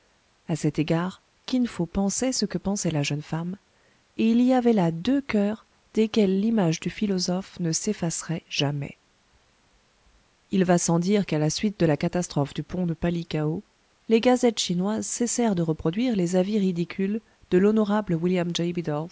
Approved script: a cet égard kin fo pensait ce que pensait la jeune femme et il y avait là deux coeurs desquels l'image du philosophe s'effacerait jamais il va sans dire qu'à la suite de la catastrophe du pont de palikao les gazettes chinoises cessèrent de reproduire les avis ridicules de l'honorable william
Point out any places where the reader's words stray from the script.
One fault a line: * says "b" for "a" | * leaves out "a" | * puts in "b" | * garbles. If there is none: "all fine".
* puts in "ne"